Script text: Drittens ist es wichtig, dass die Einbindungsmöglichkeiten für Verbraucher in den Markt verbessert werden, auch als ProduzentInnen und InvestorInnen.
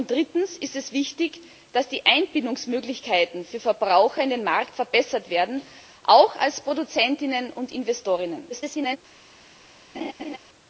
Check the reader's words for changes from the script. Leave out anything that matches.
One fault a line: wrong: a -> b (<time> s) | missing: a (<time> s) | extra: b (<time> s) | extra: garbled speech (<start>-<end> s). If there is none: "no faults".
extra: garbled speech (8.5-9.0 s)